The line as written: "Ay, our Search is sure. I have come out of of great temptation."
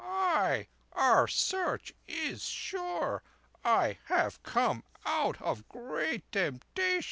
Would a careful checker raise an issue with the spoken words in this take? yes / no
yes